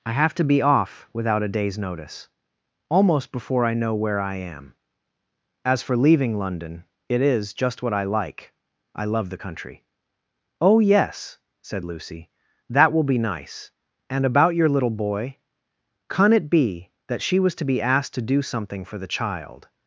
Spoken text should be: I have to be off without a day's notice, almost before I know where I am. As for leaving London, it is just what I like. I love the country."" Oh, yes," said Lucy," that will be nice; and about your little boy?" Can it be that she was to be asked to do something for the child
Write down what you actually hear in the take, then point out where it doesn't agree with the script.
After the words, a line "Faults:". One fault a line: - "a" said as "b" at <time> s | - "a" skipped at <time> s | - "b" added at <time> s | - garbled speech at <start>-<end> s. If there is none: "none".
I have to be off without a day's notice, almost before I know where I am. As for leaving London, it is just what I like. I love the country."" Oh, yes," said Lucy," that will be nice; and about your little boy?" Can it be that she was to be asked to do something for the child
Faults:
none